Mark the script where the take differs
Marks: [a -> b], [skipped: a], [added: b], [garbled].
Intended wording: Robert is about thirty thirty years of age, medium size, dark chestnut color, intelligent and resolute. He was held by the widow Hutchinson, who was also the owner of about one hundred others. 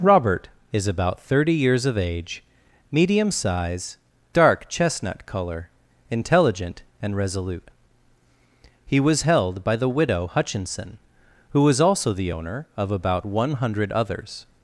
Robert is about thirty [skipped: thirty] years of age, medium size, dark chestnut color, intelligent and resolute. He was held by the widow Hutchinson, who was also the owner of about one hundred others.